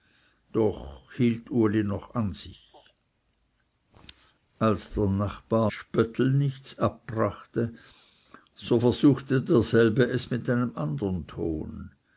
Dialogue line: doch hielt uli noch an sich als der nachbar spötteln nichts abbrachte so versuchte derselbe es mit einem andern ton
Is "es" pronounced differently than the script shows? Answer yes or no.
no